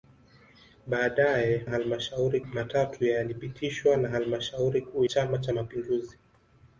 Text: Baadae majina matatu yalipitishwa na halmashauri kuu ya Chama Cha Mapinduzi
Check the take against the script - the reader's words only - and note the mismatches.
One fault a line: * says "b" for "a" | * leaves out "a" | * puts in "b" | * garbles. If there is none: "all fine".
* says "halmashauri" for "majina"
* leaves out "ya"